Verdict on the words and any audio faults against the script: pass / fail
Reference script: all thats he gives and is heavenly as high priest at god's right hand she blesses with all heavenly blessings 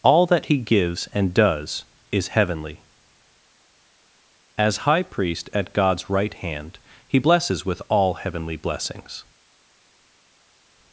fail